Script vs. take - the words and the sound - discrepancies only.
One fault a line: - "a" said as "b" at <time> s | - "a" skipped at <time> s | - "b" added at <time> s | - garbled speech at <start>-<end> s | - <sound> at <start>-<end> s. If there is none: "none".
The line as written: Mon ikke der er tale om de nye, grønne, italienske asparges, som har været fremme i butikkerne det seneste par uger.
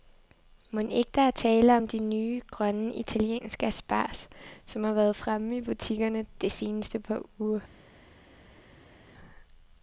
none